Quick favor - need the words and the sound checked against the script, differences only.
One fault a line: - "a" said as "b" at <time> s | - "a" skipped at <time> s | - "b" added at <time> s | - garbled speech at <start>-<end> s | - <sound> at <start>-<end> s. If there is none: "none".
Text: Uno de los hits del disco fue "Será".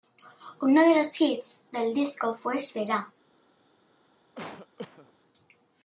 - cough at 4.3-5.1 s